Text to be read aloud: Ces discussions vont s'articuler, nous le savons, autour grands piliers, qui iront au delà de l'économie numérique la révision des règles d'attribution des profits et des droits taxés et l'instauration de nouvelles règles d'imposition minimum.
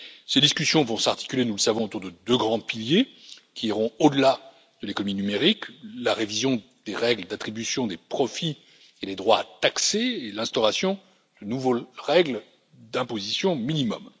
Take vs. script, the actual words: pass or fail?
fail